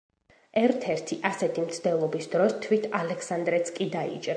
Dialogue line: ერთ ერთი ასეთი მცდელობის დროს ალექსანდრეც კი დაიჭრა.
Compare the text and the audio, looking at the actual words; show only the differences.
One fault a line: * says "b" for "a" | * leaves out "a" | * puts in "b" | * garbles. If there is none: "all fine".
* puts in "თვით"